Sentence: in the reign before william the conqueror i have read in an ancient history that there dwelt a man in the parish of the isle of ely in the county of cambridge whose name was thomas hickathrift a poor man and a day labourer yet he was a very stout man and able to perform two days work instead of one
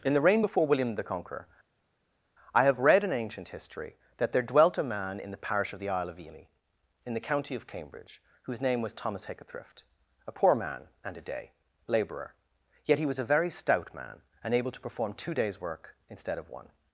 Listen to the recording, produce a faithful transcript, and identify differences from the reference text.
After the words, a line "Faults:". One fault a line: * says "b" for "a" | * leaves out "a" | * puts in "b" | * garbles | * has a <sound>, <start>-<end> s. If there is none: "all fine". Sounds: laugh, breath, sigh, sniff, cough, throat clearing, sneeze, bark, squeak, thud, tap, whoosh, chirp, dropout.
in the reign before william the conqueror i have read in ancient history that there dwelt a man in the parish of the isle of ely in the county of cambridge whose name was thomas hickathrift a poor man and a day labourer yet he was a very stout man and able to perform two days work instead of one
Faults:
* leaves out "an"